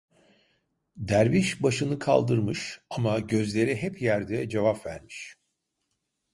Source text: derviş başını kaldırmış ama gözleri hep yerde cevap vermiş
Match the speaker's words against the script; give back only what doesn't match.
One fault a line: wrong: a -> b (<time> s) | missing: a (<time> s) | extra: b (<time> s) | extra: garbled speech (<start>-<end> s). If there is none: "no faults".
no faults